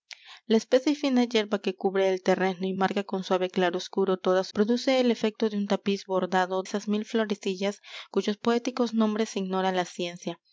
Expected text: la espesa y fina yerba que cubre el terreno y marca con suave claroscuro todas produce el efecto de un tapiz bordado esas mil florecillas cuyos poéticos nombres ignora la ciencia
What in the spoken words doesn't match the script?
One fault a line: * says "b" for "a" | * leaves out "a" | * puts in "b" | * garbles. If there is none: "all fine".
all fine